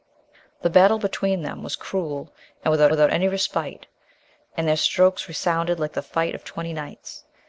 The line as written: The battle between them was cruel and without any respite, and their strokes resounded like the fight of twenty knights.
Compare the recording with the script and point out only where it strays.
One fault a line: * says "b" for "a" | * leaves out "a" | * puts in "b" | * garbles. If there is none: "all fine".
* puts in "without"